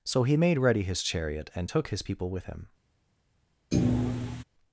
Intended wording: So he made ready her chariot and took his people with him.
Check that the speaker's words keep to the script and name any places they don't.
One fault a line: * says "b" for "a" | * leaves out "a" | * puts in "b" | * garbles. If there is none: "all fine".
* says "his" for "her"